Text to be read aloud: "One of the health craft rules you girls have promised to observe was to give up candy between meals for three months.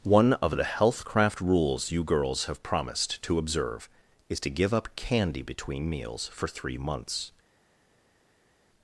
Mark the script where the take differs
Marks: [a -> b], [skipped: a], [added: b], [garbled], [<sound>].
"One of the health craft rules you girls have promised to observe [was -> is] to give up candy between meals for three months.